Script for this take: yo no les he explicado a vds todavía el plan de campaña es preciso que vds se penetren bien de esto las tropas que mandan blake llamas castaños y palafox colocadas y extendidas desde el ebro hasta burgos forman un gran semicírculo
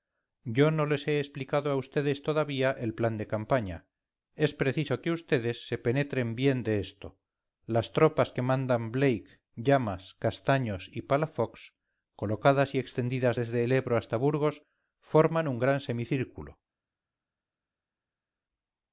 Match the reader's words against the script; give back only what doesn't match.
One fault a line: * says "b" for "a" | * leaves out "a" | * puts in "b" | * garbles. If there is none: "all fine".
all fine